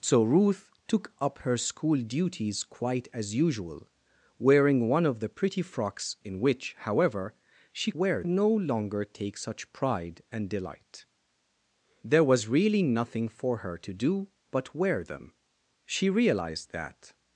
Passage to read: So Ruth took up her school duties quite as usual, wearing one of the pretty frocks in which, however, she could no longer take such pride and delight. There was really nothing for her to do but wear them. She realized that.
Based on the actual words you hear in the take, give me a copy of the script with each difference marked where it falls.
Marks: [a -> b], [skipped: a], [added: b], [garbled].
So Ruth took up her school duties quite as usual, wearing one of the pretty frocks in which, however, she [could -> wear] no longer take such pride and delight. There was really nothing for her to do but wear them. She realized that.